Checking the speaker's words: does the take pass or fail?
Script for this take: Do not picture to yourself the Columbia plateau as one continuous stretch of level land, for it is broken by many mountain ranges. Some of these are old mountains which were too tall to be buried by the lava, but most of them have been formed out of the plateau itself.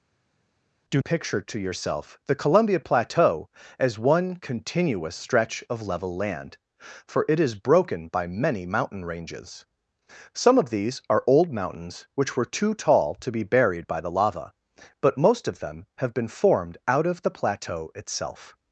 fail